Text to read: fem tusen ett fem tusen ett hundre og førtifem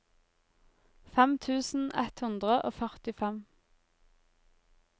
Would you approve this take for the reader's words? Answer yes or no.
no